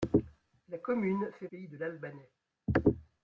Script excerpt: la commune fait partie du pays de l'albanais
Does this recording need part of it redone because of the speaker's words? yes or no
yes